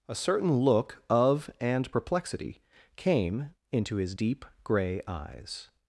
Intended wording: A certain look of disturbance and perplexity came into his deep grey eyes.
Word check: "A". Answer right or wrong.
right